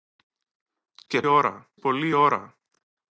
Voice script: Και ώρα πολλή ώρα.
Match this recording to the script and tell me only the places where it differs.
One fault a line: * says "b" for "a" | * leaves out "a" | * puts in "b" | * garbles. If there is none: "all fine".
all fine